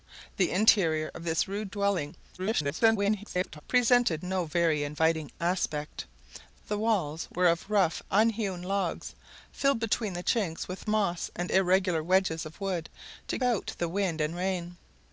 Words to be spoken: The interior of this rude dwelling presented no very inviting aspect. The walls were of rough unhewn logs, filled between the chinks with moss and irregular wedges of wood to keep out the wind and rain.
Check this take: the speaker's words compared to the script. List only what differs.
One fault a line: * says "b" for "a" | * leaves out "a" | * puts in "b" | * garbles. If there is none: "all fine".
* garbles
* leaves out "keep"